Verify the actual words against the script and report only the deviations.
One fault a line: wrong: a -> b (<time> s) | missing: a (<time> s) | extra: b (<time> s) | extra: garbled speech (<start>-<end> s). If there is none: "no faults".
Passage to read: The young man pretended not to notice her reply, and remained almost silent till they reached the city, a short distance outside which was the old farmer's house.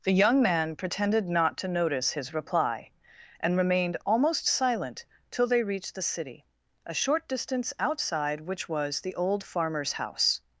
wrong: her -> his (2.1 s)